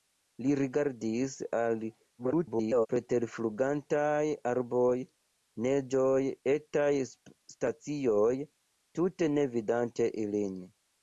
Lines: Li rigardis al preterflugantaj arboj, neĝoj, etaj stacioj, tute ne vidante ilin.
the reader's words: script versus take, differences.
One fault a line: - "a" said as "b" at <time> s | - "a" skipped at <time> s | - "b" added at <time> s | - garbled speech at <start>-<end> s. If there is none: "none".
- garbled speech at 2.2-2.9 s